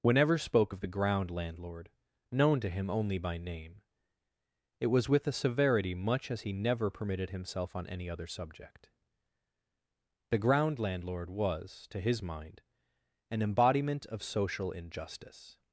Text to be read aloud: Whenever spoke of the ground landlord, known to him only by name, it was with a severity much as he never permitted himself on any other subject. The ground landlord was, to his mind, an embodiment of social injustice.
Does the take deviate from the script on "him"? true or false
false